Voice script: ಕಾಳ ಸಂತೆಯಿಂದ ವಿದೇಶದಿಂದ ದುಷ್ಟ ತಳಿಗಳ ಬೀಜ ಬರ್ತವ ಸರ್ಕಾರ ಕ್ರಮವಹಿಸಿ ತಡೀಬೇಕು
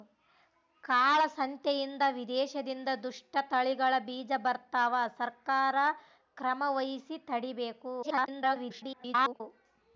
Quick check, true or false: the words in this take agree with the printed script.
false